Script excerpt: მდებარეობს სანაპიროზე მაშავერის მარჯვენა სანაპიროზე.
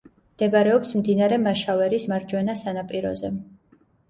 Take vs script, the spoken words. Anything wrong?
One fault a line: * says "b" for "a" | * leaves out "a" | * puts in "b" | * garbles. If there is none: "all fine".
* says "მდინარე" for "სანაპიროზე"